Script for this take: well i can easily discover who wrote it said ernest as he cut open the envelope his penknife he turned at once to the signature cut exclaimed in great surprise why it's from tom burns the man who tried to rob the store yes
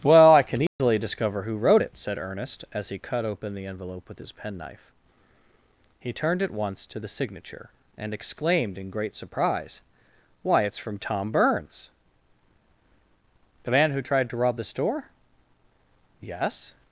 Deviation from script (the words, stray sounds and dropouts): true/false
true